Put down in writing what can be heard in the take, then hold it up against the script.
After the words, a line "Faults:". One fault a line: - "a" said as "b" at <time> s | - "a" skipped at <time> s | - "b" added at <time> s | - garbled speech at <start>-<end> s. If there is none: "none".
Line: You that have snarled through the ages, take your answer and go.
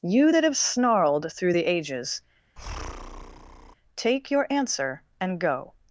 You that have snarled through the ages, take your answer and go.
Faults:
none